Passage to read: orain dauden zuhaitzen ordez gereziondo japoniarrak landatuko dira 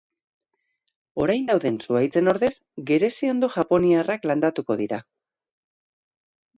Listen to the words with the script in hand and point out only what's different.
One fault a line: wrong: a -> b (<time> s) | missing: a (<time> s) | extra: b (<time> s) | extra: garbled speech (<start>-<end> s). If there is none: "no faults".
no faults